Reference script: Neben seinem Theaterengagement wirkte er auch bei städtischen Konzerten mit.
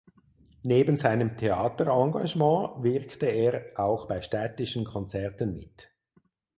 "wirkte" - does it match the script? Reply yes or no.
yes